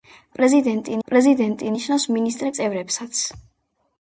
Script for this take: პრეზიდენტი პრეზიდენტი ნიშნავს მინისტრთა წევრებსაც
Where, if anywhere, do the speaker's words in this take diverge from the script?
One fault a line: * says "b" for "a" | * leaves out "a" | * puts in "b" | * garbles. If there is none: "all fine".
all fine